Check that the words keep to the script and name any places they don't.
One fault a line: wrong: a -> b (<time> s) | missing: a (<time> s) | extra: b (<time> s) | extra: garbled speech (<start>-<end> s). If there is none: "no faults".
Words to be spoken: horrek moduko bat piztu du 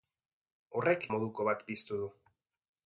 no faults